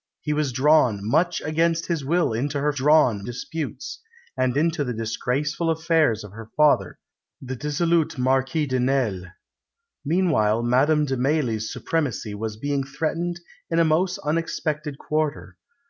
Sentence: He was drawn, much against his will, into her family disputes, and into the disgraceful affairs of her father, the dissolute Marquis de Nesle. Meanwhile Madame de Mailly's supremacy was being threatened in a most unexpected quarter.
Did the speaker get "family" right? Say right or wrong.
wrong